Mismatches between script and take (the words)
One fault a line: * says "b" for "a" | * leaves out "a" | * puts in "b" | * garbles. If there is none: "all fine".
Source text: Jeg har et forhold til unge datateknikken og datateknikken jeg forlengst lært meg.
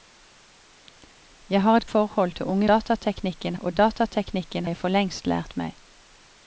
all fine